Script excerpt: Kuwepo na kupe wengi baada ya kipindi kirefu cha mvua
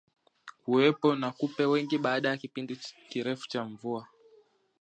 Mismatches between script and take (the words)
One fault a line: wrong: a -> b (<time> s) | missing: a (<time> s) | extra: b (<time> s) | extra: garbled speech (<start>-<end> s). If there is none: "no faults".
no faults